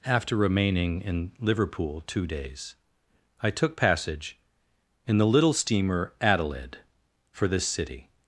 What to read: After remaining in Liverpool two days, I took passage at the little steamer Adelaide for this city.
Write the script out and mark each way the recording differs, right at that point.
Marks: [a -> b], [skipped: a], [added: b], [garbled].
After remaining in Liverpool two days, I took passage [at -> in] the little steamer Adelaide for this city.